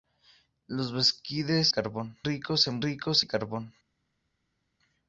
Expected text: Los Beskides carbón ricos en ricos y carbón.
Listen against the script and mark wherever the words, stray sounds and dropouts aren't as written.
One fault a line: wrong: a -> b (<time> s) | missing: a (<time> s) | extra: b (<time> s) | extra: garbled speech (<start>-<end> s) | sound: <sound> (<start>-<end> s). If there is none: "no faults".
no faults